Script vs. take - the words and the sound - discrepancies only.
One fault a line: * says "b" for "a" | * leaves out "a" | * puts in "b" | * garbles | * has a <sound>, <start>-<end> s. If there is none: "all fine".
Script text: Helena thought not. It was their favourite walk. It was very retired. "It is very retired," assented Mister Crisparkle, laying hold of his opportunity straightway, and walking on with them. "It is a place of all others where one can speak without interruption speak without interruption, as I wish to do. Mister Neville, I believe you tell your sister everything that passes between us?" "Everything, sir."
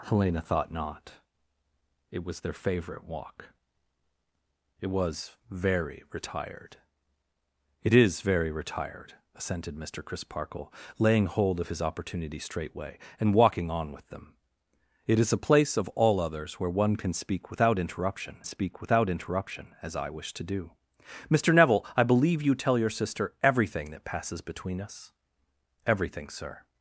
all fine